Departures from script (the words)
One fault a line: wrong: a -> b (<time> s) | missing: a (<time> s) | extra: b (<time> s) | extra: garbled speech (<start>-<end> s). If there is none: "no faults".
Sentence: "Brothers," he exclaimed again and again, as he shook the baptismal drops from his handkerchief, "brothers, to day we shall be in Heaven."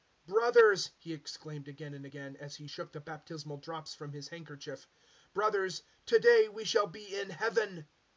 no faults